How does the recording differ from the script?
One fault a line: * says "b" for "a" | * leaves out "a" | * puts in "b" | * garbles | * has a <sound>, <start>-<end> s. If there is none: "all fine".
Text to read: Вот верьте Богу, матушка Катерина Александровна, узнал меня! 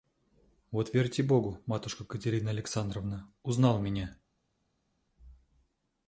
all fine